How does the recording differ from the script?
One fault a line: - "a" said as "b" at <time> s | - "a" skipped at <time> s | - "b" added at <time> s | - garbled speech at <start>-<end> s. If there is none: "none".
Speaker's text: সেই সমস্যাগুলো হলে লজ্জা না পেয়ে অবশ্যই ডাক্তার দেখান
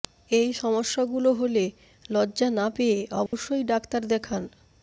- "সেই" said as "এই" at 0.3 s